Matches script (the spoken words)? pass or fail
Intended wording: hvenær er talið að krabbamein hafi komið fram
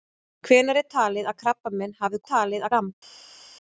fail